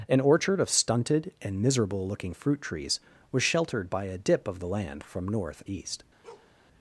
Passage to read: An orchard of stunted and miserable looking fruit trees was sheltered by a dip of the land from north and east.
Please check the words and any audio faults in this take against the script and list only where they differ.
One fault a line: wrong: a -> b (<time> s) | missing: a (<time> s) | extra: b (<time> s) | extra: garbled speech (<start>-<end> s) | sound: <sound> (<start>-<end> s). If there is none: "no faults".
missing: and (5.6 s)
sound: bark (6.2-6.5 s)